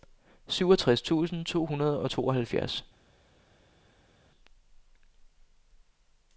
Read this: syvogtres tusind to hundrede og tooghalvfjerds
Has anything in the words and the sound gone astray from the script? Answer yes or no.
no